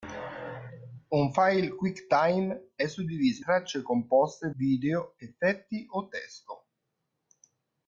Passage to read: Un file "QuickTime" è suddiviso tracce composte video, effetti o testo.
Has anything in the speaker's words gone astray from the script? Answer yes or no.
no